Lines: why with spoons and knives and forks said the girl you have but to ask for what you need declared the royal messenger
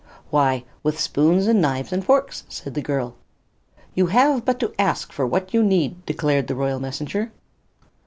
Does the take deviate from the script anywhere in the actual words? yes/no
no